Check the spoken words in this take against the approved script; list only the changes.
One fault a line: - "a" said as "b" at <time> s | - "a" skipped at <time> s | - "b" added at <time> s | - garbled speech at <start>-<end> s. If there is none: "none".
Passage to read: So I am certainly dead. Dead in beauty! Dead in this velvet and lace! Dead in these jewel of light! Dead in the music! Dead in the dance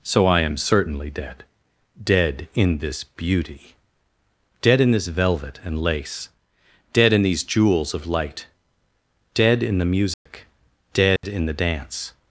- "this" added at 2.8 s
- "jewel" said as "jewels" at 7.4 s